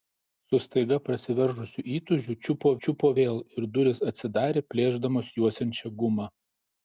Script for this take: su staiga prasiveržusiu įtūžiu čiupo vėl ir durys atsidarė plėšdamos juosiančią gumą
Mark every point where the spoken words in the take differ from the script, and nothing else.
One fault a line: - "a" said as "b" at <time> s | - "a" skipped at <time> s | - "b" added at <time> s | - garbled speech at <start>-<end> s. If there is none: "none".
- "čiupo" added at 2.9 s